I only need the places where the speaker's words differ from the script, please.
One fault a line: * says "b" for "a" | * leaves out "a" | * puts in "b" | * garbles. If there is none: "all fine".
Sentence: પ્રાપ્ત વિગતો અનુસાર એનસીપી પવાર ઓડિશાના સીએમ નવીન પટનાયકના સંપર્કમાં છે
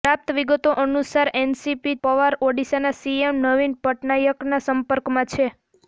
all fine